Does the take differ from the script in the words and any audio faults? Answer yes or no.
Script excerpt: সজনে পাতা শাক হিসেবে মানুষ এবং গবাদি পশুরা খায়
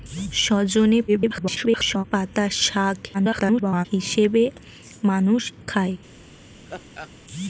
yes